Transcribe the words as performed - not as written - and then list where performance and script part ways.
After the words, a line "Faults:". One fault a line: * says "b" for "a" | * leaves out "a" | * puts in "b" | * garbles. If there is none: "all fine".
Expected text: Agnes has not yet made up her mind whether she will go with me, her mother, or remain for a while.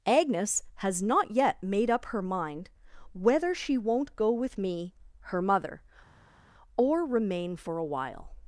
Agnes has not yet made up her mind whether she won't go with me, her mother, or remain for a while.
Faults:
* says "won't" for "will"